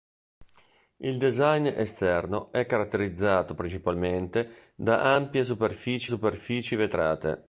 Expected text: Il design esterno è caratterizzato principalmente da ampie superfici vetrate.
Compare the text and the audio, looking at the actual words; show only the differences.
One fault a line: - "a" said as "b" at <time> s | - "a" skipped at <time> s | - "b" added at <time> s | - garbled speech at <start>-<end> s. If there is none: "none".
- "superfici" added at 6.1 s